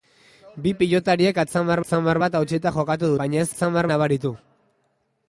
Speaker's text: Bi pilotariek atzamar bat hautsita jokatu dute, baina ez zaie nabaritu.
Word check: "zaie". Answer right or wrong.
wrong